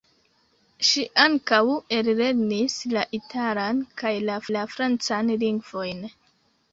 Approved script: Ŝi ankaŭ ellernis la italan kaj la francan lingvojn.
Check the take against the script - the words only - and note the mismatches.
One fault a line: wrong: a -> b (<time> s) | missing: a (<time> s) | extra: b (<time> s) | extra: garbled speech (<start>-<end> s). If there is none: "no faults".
extra: la (4.6 s)